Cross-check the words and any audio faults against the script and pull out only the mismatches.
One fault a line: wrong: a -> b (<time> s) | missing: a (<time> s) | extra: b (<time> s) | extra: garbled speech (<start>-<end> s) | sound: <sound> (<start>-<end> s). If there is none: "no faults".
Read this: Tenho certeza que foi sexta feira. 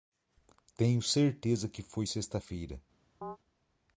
sound: chirp (3.2-3.4 s)